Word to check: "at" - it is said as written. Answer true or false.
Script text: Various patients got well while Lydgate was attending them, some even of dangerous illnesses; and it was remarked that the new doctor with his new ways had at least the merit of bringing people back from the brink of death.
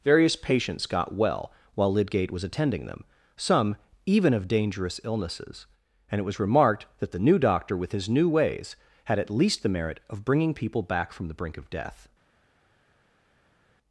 true